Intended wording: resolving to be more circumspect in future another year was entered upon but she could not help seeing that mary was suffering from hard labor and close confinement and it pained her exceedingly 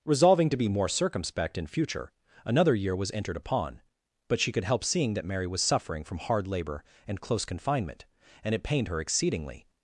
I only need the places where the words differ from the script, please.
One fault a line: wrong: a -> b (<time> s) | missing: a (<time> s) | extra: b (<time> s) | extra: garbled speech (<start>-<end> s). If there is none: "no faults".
missing: not (4.6 s)